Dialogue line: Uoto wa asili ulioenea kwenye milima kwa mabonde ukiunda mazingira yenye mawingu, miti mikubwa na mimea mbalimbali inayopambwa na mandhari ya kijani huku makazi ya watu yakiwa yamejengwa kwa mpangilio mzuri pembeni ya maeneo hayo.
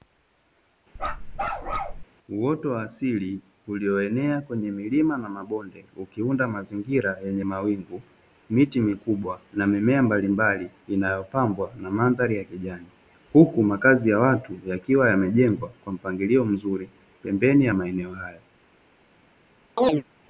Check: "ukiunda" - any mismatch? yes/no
no